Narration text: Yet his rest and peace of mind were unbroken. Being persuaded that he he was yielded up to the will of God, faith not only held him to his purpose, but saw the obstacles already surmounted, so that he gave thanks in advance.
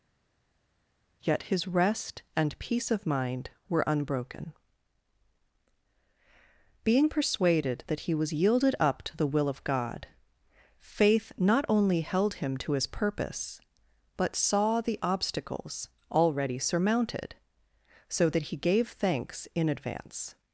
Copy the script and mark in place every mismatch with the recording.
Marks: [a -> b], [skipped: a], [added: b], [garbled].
Yet his rest and peace of mind were unbroken. Being persuaded that he [skipped: he] was yielded up to the will of God, faith not only held him to his purpose, but saw the obstacles already surmounted, so that he gave thanks in advance.